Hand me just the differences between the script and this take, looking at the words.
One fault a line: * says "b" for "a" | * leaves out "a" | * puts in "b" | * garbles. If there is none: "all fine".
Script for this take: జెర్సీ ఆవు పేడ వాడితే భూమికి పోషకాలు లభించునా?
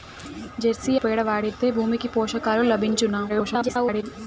* leaves out "ఆవు"
* garbles